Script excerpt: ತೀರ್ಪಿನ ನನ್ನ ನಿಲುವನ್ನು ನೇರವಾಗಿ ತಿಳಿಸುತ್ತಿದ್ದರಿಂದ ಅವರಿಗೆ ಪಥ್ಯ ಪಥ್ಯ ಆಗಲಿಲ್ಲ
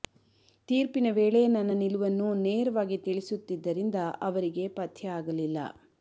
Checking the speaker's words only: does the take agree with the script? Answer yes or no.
no